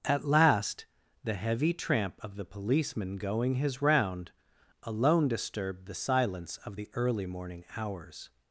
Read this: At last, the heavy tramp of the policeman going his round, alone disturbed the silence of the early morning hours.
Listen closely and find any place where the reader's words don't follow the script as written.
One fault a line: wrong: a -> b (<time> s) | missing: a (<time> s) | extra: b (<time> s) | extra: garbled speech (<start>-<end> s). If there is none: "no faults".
no faults